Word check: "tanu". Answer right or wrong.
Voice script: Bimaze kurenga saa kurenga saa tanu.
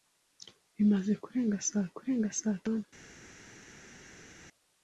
right